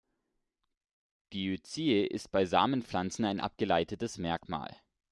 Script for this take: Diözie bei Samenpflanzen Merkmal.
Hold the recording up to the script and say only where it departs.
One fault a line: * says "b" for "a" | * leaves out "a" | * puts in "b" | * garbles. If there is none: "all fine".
* puts in "ist"
* puts in "ein abgeleitetes"